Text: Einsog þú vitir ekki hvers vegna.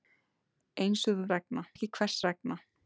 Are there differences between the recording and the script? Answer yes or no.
yes